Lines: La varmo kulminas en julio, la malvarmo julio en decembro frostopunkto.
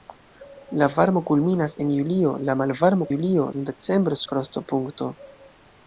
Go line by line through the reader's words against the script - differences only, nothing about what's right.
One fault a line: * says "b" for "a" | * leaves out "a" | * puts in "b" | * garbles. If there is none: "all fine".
all fine